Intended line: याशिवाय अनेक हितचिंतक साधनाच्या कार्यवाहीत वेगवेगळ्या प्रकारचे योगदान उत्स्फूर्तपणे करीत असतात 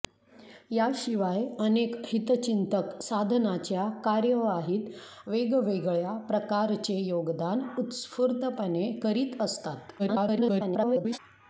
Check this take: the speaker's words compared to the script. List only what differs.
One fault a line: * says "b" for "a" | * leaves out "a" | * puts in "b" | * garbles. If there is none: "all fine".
* garbles